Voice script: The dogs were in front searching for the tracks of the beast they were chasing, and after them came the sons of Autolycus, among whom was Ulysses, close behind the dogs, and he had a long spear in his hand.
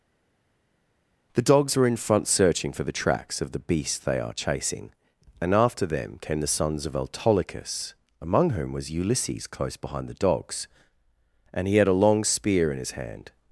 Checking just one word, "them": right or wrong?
right